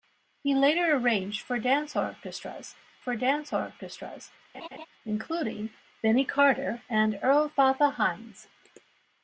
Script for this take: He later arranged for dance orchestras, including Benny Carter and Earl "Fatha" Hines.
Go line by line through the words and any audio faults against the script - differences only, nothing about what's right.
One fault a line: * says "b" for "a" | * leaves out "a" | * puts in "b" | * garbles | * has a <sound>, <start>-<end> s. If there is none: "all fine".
* puts in "for dance orchestras"
* has a laugh, 4.5-4.9 s